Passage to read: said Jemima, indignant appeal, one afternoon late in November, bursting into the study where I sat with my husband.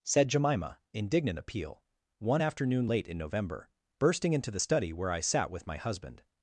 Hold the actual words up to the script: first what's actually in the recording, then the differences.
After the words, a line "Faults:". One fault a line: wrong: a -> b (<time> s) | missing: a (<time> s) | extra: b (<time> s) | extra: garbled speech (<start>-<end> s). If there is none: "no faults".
said Jemima, indignant appeal, one afternoon late in November, bursting into the study where I sat with my husband.
Faults:
no faults